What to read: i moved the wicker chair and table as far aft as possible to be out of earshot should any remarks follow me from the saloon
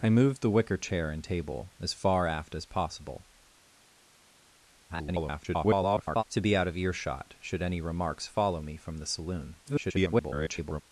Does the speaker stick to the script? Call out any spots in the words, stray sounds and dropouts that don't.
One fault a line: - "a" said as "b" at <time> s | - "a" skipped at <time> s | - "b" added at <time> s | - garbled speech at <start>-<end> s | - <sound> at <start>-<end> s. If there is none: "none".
- garbled speech at 4.9-6.2 s
- garbled speech at 9.6-10.8 s